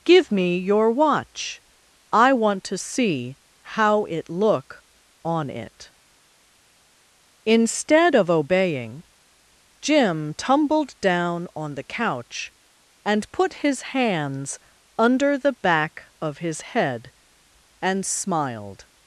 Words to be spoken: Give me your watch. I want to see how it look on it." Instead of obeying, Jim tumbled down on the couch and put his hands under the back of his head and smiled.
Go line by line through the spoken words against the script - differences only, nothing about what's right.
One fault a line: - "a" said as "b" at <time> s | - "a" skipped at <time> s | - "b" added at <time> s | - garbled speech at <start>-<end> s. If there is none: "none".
none